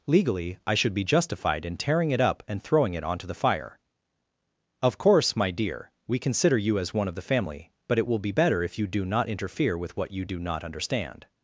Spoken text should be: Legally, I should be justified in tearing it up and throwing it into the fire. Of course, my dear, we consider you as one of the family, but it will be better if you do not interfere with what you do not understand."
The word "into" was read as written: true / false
false